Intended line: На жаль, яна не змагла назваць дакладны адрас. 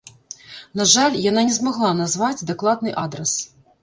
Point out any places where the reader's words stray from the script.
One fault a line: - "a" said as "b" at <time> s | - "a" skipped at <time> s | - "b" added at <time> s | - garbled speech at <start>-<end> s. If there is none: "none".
none